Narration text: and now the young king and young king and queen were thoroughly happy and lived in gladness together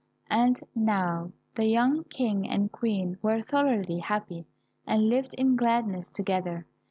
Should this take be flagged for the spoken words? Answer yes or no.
yes